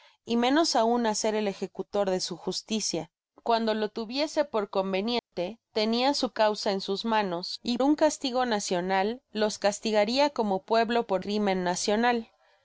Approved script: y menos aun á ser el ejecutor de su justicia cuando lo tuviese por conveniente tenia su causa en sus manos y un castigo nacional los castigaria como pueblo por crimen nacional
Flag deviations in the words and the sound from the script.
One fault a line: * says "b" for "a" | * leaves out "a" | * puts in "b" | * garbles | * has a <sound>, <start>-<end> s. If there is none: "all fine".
* has a dropout, 5.2-5.3 s